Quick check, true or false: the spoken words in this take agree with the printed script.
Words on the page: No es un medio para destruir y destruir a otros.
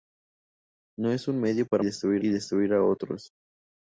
true